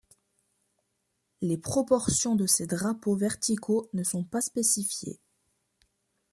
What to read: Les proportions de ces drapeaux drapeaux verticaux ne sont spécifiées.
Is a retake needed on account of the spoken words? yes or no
yes